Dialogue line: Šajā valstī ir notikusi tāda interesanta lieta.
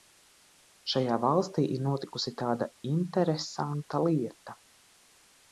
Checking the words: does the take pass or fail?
pass